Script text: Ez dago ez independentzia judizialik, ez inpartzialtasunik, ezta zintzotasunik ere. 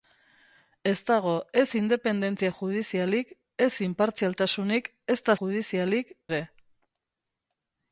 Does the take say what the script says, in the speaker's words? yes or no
no